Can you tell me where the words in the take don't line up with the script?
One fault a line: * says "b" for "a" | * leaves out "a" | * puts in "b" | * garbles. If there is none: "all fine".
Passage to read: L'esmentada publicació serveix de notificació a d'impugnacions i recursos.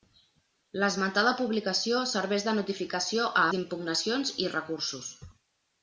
all fine